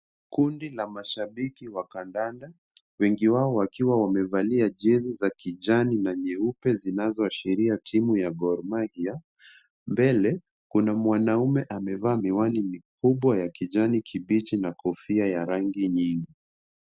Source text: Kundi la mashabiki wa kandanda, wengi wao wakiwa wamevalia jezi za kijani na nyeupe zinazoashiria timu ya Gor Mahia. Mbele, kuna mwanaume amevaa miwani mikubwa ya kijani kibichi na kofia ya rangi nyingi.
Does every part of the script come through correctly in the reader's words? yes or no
yes